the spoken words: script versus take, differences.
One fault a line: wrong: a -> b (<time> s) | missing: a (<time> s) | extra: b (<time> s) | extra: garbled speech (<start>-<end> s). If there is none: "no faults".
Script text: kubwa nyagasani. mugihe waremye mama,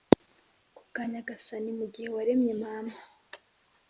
no faults